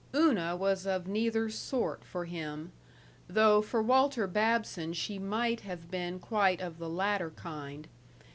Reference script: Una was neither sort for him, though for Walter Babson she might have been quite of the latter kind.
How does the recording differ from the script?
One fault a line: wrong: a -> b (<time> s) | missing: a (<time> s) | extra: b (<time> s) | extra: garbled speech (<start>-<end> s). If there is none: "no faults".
extra: of (0.9 s)